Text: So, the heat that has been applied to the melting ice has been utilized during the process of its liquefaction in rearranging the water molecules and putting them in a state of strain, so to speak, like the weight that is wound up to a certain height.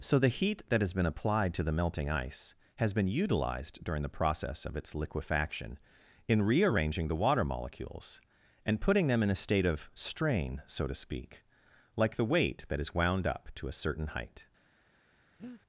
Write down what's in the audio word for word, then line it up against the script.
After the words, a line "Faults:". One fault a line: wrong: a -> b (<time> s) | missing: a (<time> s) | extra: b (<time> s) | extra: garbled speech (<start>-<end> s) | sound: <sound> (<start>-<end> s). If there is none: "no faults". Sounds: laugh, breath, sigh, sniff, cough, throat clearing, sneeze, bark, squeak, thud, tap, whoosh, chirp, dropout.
So, the heat that has been applied to the melting ice has been utilized during the process of its liquefaction in rearranging the water molecules and putting them in a state of strain, so to speak, like the weight that is wound up to a certain height.
Faults:
sound: breath (15.4-15.6 s)